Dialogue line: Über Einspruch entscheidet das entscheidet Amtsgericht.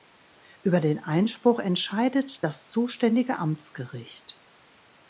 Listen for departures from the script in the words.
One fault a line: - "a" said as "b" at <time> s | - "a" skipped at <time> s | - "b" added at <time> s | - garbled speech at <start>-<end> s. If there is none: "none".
- "den" added at 0.8 s
- "entscheidet" said as "zuständige" at 2.7 s